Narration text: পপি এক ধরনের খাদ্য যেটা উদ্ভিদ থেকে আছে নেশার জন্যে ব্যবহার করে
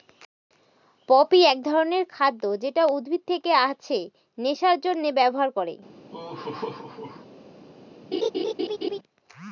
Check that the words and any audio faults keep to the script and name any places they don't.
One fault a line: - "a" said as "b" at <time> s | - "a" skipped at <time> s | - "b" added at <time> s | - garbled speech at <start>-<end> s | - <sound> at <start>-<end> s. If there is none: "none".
- laugh at 6.1-7.3 s
- laugh at 8.1-9.0 s